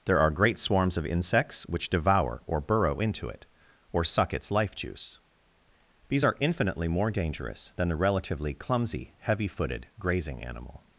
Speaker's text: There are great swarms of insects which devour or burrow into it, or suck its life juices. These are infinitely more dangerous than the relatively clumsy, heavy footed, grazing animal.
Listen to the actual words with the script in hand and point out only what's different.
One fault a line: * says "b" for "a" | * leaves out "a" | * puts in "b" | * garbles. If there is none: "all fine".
* says "juice" for "juices"